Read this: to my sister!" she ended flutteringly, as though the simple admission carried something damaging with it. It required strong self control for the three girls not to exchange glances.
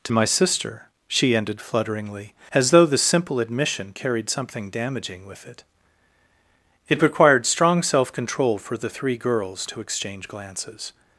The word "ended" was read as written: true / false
true